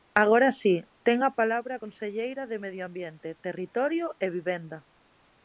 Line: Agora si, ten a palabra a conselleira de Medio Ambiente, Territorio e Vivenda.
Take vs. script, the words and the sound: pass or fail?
pass